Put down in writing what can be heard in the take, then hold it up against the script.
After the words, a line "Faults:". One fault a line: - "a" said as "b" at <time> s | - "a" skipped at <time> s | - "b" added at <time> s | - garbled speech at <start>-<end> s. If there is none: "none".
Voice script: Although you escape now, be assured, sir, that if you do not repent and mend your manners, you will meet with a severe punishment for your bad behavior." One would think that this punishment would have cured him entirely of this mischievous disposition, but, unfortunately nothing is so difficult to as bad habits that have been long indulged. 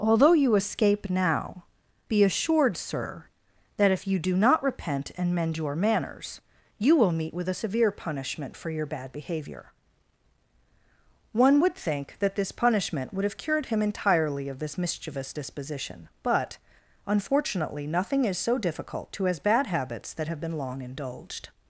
Although you escape now, be assured, sir, that if you do not repent and mend your manners, you will meet with a severe punishment for your bad behavior." One would think that this punishment would have cured him entirely of this mischievous disposition, but, unfortunately nothing is so difficult to as bad habits that have been long indulged.
Faults:
none